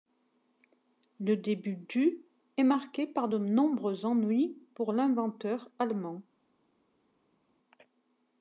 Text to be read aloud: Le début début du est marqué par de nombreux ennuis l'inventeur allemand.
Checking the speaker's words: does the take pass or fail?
fail